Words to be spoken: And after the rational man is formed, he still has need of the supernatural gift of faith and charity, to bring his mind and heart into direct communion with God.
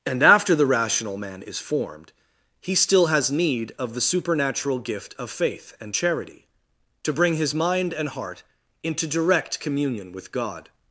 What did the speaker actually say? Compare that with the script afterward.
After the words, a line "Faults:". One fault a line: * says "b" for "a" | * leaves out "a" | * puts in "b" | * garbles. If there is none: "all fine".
And after the rational man is formed, he still has need of the supernatural gift of faith and charity, to bring his mind and heart into direct communion with God.
Faults:
all fine